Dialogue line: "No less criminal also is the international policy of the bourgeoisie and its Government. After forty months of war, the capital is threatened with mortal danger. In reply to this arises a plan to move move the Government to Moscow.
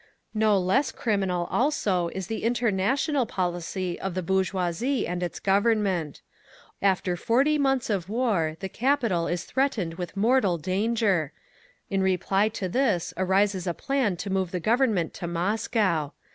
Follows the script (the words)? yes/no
no